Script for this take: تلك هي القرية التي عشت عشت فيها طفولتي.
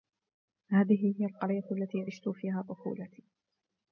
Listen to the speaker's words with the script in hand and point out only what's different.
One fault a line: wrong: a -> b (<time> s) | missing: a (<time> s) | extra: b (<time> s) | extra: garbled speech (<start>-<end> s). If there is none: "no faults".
wrong: تلك -> هذه (0.7 s)
missing: عشت (2.3 s)